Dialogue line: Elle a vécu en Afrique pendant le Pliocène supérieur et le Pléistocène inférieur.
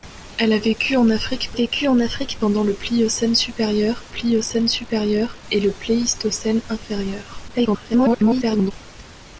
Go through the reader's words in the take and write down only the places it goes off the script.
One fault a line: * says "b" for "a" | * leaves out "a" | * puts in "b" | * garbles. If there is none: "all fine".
* puts in "vécu en Afrique"
* puts in "Pliocène supérieur"
* garbles